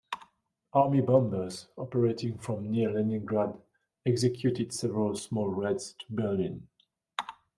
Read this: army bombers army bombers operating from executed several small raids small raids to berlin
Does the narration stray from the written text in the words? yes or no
yes